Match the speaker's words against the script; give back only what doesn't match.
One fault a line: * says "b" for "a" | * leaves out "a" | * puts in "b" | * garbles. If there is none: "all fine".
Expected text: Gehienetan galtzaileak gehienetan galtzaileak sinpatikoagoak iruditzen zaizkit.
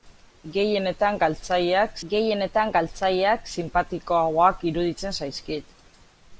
all fine